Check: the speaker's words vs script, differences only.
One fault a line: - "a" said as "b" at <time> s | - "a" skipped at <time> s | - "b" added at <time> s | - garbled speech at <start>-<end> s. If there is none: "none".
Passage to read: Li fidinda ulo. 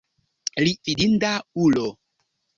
none